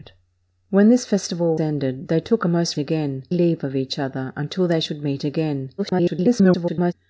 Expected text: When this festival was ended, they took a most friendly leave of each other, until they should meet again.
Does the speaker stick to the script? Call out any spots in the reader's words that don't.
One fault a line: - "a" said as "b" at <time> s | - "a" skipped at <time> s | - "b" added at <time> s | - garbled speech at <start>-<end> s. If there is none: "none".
- "was" skipped at 1.6 s
- "friendly" said as "again" at 2.8 s
- garbled speech at 5.8-6.9 s